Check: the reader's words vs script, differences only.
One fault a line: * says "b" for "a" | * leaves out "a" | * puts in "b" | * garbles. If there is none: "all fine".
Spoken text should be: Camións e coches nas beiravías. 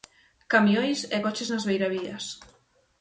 all fine